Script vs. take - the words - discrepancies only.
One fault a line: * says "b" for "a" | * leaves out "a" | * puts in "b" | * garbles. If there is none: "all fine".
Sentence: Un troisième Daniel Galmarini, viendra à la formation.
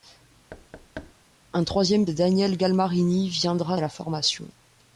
all fine